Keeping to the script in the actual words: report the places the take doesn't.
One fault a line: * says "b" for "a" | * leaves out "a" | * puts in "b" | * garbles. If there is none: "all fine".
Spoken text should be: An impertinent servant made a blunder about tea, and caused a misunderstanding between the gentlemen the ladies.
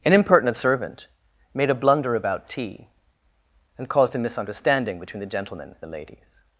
all fine